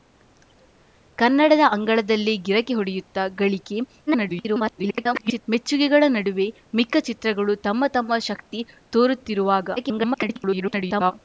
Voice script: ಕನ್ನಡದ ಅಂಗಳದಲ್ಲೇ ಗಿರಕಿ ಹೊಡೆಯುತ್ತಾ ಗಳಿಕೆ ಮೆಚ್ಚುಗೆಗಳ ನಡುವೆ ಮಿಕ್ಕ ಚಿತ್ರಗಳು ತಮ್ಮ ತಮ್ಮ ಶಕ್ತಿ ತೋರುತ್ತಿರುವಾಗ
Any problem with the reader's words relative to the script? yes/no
yes